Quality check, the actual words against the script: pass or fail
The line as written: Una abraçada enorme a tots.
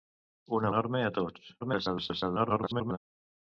fail